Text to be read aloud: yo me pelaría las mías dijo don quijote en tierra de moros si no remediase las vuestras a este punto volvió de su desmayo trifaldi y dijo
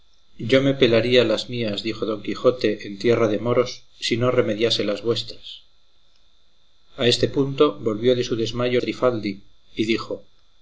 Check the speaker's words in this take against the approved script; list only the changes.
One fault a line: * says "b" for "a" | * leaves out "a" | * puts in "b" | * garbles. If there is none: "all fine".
all fine